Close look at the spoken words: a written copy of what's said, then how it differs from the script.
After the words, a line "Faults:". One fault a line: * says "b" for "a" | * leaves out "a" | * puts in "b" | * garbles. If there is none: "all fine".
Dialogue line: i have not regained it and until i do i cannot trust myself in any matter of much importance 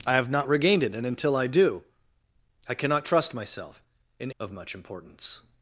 i have not regained it and until i do i cannot trust myself in of much importance
Faults:
* leaves out "any matter"